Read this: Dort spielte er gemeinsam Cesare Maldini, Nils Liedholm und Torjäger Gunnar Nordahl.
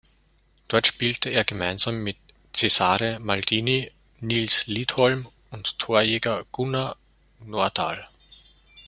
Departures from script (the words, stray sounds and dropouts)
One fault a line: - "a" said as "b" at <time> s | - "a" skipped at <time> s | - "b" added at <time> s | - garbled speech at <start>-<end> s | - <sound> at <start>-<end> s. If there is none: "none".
- "mit" added at 2.0 s